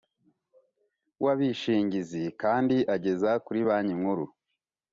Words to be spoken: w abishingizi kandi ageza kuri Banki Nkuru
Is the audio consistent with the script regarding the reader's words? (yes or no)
yes